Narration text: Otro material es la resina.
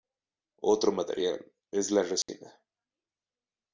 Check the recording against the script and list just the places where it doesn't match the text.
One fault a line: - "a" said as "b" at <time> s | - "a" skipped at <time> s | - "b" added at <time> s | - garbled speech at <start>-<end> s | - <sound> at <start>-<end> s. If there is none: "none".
- dropout at 2.2-2.3 s